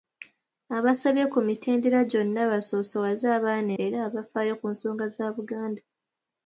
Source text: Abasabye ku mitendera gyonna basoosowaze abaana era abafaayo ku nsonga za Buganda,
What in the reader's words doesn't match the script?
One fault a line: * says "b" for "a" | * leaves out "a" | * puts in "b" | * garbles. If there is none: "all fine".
all fine